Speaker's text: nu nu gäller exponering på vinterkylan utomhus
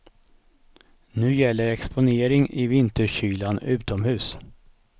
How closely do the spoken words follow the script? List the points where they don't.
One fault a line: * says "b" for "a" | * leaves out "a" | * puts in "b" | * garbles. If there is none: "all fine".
* leaves out "nu"
* says "i" for "på"